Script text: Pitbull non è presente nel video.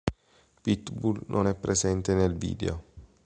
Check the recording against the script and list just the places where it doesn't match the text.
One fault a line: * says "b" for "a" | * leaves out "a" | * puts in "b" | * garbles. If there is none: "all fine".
all fine